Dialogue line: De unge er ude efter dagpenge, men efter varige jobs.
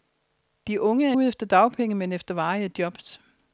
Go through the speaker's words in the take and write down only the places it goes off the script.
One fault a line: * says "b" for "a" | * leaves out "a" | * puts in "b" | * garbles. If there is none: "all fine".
all fine